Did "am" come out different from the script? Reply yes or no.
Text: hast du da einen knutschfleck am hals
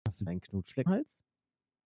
yes